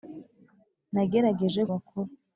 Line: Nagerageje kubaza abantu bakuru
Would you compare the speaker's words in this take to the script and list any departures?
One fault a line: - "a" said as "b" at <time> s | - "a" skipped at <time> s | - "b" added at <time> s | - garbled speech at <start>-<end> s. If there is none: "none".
- "kubaza abantu" skipped at 1.6 s